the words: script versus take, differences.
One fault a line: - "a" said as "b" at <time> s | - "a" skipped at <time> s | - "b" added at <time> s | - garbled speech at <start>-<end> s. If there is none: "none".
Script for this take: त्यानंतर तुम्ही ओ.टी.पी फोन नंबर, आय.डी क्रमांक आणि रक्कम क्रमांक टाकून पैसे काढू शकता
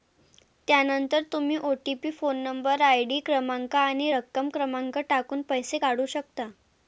none